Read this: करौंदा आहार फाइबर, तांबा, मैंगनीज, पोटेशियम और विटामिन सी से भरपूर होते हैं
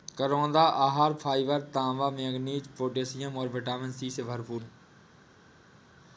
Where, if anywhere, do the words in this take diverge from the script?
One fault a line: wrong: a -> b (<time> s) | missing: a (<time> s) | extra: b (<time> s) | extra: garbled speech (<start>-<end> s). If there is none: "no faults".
missing: होते (4.6 s)